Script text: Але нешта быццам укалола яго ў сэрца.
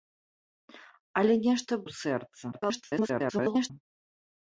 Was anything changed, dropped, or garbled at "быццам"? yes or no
yes